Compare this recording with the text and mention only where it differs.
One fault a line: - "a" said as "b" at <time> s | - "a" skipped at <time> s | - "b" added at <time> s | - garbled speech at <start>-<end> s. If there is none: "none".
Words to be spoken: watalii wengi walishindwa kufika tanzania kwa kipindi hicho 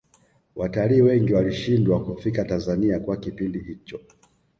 none